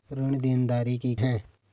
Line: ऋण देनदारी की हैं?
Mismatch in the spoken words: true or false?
false